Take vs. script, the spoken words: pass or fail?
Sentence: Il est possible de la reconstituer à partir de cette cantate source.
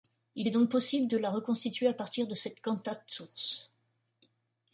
fail